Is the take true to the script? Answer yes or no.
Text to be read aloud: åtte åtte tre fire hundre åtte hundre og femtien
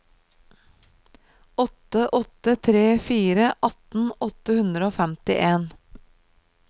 no